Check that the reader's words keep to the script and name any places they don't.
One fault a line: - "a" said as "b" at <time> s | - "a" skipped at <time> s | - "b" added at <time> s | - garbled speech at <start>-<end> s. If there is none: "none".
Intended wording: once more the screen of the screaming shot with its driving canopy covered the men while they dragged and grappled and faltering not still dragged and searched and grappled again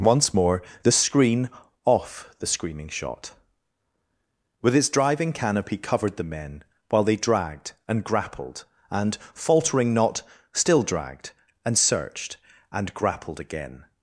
- "of" said as "off" at 1.8 s